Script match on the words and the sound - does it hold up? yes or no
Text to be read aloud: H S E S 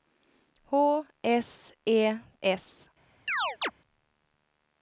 no